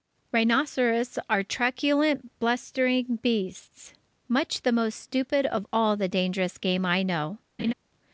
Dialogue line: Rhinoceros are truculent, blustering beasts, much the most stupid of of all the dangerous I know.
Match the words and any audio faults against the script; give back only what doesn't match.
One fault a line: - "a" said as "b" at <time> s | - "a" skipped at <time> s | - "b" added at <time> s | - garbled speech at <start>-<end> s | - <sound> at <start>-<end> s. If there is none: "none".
- "of" skipped at 5.7 s
- "game" added at 6.6 s
- laugh at 7.6-7.7 s